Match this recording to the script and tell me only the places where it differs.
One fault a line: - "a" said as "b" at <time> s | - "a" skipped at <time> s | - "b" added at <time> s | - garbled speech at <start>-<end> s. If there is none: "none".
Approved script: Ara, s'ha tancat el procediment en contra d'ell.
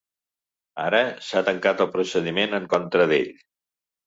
none